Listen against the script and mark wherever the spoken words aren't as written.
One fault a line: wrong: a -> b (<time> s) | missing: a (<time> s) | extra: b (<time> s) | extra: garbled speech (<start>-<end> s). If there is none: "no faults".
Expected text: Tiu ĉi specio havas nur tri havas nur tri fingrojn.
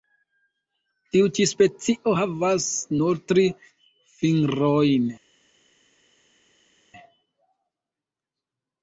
missing: havas nur tri (3.5 s)